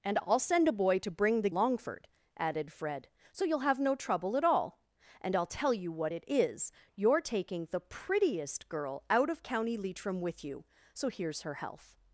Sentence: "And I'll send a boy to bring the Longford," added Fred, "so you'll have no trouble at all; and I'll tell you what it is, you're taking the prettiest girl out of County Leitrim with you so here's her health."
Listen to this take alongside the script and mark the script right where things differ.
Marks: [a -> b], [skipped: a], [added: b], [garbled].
"And I'll send a boy to bring the Longford," added Fred, "so you'll have no trouble at all; and I'll tell you what it is, you're taking the prettiest girl out of County Leitrim with you so here's her health."